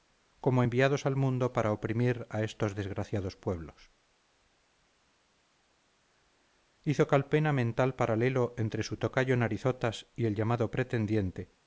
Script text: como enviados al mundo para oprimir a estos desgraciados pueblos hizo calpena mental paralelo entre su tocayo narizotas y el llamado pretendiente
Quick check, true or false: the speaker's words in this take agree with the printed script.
true